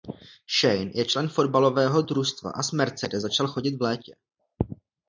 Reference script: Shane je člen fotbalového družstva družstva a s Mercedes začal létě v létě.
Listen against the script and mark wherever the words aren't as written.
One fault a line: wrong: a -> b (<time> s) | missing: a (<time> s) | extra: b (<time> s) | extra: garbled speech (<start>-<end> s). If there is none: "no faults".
missing: družstva (2.5 s)
wrong: létě -> chodit (3.5 s)